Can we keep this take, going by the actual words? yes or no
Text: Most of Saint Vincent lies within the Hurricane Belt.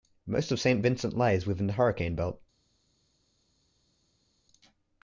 yes